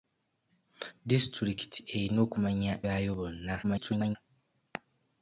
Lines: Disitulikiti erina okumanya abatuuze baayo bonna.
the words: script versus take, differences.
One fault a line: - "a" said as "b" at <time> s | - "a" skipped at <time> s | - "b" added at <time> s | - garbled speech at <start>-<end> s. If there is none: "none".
- "abatuuze" skipped at 2.7 s
- garbled speech at 3.6-4.2 s